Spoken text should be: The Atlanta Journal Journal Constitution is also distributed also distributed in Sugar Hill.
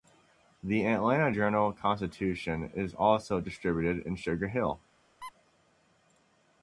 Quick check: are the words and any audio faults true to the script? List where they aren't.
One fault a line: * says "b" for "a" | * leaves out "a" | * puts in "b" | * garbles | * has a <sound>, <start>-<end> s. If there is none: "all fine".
* leaves out "Journal"
* leaves out "also distributed"
* has a squeak, 5.2-5.3 s